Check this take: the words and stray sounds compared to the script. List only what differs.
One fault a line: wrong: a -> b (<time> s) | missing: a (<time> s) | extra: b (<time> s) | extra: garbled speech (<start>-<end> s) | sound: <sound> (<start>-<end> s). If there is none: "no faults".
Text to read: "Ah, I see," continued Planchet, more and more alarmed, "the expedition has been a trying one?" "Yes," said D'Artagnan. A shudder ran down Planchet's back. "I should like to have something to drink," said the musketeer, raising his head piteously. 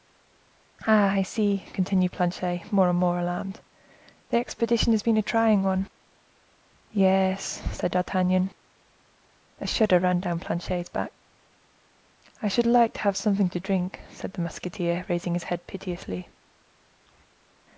no faults